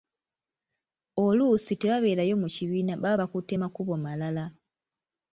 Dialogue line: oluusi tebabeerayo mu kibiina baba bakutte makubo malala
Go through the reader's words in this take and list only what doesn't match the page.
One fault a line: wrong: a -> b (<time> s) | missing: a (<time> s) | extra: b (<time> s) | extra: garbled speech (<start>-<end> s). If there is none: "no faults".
no faults